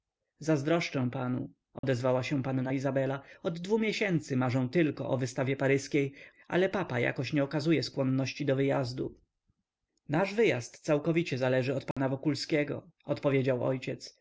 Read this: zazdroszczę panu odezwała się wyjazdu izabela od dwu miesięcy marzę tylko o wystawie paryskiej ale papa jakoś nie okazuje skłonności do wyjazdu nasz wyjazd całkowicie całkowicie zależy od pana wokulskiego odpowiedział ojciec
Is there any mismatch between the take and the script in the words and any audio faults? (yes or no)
yes